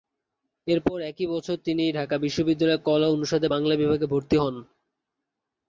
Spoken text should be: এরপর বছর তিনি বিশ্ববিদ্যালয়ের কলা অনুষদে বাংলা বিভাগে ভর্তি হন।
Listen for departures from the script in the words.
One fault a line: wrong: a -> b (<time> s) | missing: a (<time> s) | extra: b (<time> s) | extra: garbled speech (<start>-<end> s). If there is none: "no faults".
extra: একই (1.0 s)
extra: ঢাকা (1.9 s)